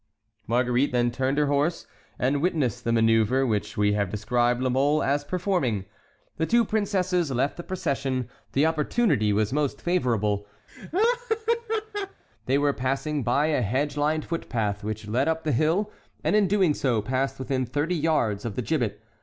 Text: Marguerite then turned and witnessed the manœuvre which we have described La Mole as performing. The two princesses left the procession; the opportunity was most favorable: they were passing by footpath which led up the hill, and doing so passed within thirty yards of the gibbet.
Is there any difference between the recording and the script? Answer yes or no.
yes